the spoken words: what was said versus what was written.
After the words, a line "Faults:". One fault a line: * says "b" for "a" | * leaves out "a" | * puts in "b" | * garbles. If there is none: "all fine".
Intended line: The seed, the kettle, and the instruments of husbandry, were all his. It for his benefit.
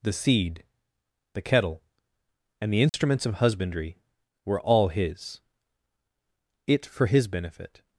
The seed, the kettle, and the instruments of husbandry, were all his. It for his benefit.
Faults:
all fine